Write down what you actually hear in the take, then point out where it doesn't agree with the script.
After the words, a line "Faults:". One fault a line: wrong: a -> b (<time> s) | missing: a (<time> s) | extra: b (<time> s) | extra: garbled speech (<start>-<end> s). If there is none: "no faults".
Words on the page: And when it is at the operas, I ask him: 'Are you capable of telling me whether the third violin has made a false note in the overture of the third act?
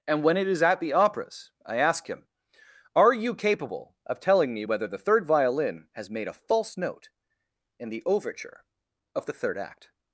And when it is at the operas, I ask him: 'Are you capable of telling me whether the third violin has made a false note in the overture of the third act?
Faults:
no faults